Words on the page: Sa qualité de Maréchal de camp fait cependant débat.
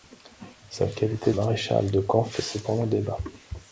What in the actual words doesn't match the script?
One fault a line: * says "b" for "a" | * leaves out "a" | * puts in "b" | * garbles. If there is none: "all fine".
* leaves out "de"